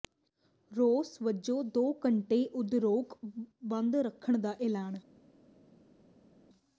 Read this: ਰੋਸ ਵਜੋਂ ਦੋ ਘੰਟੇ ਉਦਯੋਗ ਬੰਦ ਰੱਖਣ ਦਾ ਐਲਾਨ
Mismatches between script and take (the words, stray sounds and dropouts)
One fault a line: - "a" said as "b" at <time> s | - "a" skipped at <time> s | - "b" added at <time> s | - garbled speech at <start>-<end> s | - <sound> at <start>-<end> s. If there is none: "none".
none